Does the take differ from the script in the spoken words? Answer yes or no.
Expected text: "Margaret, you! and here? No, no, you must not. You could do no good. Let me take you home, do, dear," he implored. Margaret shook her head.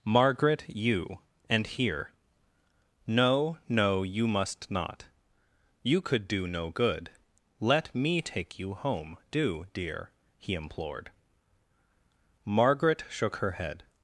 no